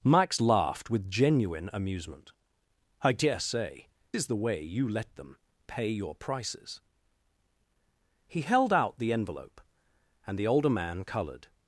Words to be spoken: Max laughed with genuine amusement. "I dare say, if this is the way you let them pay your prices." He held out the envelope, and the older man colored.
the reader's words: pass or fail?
fail